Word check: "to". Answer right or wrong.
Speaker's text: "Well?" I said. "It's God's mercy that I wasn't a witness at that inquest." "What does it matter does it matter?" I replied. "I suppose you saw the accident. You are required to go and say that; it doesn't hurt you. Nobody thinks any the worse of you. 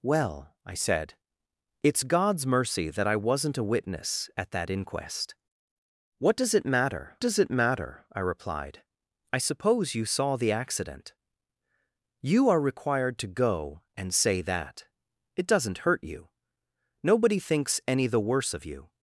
right